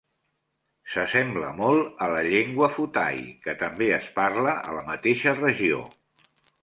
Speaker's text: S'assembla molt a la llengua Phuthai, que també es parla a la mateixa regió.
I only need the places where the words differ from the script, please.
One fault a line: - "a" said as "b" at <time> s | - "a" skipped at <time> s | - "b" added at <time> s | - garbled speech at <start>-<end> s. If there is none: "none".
none